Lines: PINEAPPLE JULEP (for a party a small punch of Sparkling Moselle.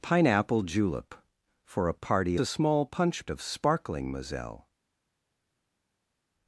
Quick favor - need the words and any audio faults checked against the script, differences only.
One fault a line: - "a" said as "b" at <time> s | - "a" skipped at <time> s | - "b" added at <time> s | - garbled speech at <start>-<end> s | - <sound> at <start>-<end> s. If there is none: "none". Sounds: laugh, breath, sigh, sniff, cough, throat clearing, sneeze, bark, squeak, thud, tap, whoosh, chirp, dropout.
none